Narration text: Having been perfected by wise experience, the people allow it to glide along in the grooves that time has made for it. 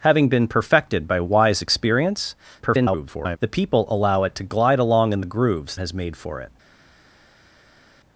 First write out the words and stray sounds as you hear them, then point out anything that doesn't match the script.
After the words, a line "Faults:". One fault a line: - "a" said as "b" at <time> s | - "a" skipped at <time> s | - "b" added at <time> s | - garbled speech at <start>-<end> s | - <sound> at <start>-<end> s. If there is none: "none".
Having been perfected by wise experience, [garbled] the people allow it to glide along in the grooves has made for it.
Faults:
- garbled speech at 2.6-3.4 s
- "that time" skipped at 5.8 s